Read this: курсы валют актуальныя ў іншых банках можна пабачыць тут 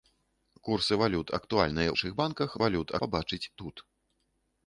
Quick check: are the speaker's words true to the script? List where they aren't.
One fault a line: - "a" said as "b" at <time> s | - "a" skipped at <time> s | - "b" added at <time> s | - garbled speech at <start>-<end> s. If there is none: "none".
- "ў" skipped at 1.9 s
- "можна" said as "валют" at 2.6 s